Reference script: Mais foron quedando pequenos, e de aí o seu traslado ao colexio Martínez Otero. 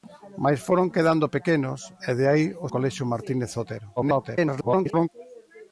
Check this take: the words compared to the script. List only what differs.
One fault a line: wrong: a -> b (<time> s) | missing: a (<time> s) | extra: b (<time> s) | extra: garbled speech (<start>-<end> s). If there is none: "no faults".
missing: seu traslado ao (2.7 s)
extra: garbled speech (4.0-5.1 s)